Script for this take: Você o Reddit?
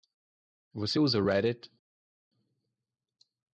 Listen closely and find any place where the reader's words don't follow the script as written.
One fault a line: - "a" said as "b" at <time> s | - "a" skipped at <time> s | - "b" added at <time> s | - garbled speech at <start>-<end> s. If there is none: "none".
- "usa" added at 1.0 s